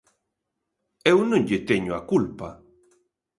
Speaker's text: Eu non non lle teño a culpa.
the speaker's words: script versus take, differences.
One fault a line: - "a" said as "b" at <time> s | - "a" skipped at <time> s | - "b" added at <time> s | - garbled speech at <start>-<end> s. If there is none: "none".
- "non" skipped at 1.4 s